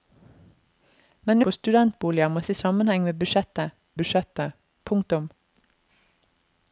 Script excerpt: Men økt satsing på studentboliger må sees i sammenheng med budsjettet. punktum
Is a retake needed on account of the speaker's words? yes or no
yes